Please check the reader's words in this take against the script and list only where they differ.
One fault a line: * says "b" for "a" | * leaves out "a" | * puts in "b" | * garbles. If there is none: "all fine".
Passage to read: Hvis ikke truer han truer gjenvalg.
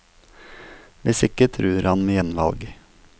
* says "med" for "truer"